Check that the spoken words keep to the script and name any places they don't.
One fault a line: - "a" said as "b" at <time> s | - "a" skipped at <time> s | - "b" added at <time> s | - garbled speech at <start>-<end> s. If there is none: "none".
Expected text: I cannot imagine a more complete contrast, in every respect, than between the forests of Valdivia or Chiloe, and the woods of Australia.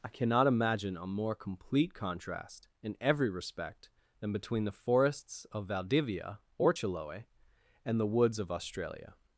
none